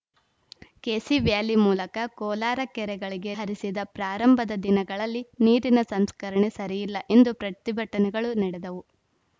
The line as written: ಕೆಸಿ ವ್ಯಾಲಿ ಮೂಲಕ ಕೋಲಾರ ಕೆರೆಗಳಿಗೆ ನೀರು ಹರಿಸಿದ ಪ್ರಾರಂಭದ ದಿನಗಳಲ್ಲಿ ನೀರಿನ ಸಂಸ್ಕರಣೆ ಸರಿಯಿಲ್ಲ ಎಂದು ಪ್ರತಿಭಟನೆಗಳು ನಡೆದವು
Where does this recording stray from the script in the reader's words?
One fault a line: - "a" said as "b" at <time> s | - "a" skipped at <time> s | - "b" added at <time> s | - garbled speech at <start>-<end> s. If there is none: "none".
- "ನೀರು" skipped at 3.3 s